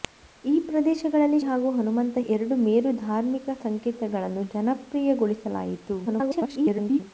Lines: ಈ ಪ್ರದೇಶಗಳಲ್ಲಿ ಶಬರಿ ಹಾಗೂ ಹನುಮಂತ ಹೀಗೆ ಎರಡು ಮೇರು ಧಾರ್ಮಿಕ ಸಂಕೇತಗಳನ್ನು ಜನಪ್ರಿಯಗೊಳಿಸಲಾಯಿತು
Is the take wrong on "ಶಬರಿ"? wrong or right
wrong